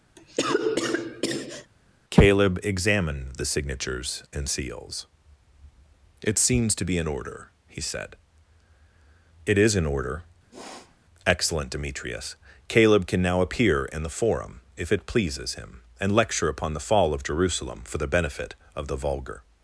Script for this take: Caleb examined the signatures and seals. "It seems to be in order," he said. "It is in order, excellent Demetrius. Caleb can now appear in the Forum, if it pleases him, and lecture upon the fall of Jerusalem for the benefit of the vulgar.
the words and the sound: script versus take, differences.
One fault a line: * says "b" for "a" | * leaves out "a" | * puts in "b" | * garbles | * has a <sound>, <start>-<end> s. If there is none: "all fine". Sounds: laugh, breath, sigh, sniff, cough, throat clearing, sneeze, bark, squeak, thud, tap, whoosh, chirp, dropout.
* has a cough, 0.2-1.7 s
* has a sniff, 10.5-11.0 s